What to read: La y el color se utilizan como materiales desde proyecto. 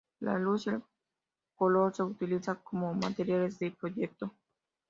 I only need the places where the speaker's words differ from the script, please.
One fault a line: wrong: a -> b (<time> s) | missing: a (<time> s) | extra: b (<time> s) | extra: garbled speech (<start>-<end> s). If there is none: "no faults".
extra: luz (0.4 s)
wrong: desde -> de (3.6 s)